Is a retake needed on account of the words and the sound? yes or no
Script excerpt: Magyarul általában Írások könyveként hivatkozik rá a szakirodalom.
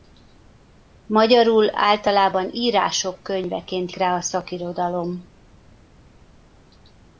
yes